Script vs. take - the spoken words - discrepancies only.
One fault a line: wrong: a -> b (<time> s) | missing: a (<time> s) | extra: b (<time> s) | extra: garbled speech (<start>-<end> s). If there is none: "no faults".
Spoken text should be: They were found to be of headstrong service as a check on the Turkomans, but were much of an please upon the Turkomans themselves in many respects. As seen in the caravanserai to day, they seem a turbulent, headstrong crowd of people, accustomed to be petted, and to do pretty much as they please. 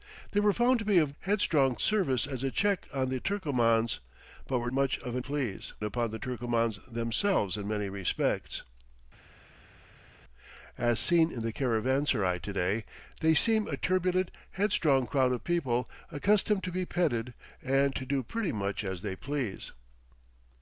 no faults